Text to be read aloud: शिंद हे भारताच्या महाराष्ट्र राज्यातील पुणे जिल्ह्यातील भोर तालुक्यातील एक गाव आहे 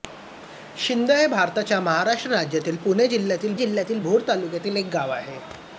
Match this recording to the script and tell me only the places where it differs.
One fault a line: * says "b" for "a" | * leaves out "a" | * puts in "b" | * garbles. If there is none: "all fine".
* puts in "जिल्ह्यातील"